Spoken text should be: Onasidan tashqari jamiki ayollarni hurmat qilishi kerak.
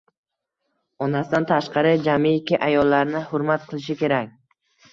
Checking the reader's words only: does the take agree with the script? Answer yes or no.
yes